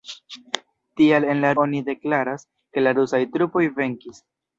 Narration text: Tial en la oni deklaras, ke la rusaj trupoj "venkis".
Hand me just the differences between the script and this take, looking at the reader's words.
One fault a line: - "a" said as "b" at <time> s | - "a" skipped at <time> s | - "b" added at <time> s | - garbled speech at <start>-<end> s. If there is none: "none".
none